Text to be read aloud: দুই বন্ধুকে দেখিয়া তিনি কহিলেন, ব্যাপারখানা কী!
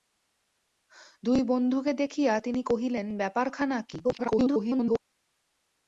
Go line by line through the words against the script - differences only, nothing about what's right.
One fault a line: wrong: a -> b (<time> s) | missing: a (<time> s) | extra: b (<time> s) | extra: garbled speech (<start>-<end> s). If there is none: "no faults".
extra: garbled speech (4.0-5.0 s)